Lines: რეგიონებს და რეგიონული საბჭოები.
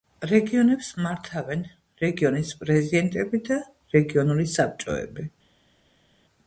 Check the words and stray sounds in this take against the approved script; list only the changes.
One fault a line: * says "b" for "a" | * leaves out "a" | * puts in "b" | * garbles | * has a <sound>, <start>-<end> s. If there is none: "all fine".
* puts in "მართავენ რეგიონის პრეზიდენტები"